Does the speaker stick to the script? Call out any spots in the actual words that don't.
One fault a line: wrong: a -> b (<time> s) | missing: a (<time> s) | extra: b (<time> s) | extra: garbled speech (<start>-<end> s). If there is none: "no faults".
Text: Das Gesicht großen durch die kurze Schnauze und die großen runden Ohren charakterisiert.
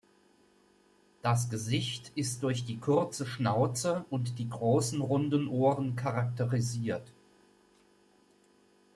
wrong: großen -> ist (2.1 s)